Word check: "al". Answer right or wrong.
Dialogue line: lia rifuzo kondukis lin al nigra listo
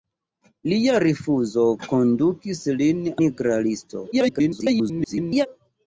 wrong